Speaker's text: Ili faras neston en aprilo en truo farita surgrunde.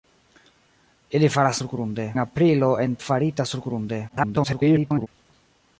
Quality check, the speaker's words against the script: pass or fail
fail